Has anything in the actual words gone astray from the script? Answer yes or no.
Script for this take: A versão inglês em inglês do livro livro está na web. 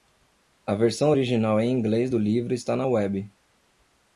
yes